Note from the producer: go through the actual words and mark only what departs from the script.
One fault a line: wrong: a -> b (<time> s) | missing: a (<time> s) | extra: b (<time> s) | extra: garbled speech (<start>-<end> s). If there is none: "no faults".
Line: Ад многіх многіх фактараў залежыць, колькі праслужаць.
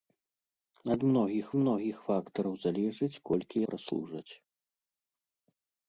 no faults